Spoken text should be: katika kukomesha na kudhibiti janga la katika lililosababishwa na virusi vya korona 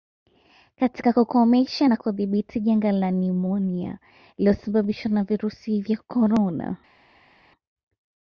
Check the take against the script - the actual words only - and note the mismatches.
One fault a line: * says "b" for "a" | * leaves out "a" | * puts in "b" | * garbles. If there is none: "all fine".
* says "nimonia" for "katika"